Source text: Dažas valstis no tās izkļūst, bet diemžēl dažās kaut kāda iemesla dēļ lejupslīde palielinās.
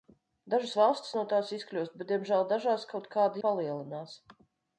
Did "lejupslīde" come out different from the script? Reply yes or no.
yes